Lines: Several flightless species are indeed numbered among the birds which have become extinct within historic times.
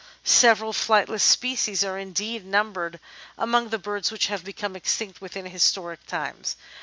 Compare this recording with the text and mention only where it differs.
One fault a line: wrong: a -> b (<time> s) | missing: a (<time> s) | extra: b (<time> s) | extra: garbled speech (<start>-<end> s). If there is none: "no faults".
no faults